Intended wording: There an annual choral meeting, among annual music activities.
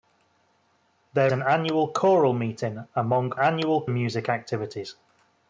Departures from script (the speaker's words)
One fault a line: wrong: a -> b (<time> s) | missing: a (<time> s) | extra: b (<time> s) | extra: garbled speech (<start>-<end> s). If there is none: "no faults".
no faults